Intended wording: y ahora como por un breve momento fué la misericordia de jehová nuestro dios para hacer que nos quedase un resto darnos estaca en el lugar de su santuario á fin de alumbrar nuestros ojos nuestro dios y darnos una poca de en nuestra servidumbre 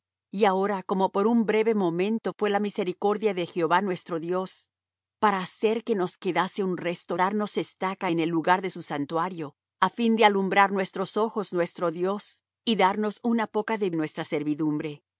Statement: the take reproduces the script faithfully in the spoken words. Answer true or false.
true